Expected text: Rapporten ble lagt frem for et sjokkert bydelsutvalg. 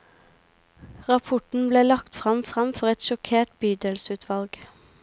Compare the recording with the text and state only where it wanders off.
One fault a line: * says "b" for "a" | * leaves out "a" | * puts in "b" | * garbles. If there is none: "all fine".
* puts in "frem"